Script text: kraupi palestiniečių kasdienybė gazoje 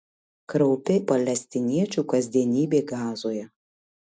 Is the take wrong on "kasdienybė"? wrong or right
right